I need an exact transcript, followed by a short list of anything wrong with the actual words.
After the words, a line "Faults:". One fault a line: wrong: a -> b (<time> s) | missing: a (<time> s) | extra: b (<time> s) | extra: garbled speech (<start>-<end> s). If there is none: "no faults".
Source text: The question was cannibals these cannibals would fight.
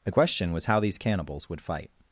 The question was how these cannibals would fight.
Faults:
wrong: cannibals -> how (0.7 s)